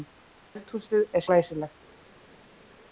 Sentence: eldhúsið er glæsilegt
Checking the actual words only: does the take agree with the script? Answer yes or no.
yes